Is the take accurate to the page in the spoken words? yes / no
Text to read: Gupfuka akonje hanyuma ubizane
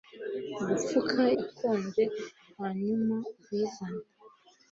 yes